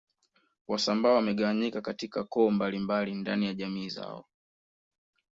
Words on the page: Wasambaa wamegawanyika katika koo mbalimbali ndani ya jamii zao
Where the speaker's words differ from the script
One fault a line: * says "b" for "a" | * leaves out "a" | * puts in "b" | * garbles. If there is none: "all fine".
all fine